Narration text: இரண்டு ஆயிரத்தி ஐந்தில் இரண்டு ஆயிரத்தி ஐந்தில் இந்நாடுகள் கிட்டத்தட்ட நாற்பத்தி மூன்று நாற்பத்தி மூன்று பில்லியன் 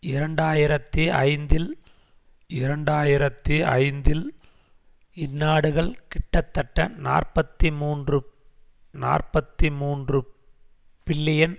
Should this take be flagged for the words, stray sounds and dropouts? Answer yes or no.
no